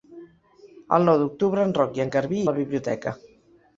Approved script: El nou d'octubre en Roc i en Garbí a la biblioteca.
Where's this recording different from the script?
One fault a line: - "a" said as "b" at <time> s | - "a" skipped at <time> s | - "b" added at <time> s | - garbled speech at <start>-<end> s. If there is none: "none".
none